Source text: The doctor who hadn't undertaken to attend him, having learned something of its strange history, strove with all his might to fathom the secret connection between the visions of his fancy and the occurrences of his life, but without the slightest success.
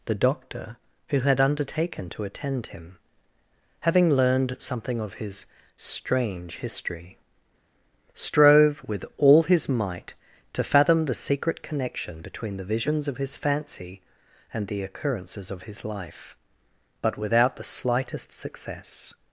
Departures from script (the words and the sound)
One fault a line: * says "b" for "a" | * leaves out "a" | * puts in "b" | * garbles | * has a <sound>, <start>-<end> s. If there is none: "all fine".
* says "had" for "hadn't"
* says "his" for "its"